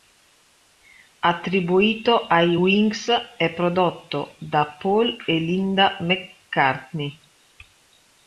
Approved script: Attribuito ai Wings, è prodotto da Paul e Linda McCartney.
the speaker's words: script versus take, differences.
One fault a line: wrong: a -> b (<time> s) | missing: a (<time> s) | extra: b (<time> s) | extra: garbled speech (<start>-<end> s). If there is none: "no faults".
no faults